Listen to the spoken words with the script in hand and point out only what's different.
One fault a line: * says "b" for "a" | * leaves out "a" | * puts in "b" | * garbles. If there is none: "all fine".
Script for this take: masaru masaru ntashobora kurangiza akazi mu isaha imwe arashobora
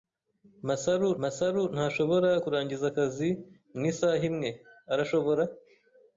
all fine